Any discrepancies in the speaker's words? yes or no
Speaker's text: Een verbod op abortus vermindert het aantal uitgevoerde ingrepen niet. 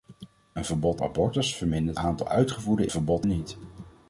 yes